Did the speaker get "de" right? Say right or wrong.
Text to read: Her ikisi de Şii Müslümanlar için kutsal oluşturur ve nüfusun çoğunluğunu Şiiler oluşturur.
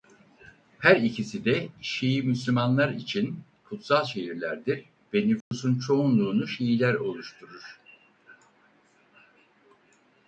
right